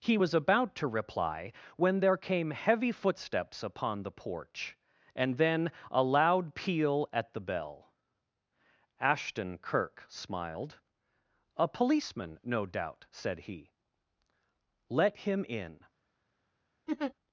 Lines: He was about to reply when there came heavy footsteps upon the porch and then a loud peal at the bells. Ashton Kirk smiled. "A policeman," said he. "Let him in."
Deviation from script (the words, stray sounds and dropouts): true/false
true